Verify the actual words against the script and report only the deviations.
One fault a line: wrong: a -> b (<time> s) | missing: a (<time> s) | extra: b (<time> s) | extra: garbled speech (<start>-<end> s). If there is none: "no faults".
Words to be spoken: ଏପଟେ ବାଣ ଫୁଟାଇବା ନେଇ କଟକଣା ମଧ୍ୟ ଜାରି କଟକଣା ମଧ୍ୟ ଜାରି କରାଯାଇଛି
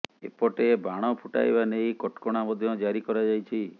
missing: କଟକଣା ମଧ୍ୟ ଜାରି (3.0 s)